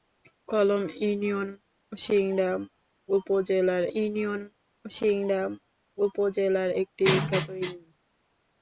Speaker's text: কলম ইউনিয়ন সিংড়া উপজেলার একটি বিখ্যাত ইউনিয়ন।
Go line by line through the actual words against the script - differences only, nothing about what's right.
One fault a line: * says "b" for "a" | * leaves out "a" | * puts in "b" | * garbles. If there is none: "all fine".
* puts in "ইউনিয়ন সিংড়া উপজেলার"